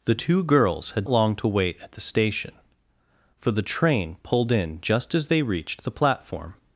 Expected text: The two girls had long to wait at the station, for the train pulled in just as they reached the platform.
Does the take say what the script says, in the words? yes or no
yes